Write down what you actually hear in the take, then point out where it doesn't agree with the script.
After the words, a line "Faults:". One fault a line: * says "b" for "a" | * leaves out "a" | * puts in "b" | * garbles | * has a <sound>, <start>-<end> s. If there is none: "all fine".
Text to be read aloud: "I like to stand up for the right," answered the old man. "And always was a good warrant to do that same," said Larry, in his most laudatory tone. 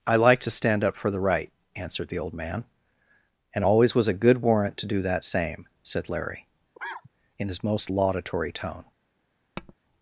"I like to stand up for the right," answered the old man. "And always was a good warrant to do that same," said Larry, in his most laudatory tone.
Faults:
* has a cough, 6.8-7.1 s
* has a tap, 9.6-9.7 s